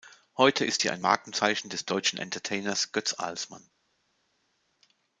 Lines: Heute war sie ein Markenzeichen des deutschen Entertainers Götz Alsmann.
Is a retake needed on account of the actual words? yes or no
yes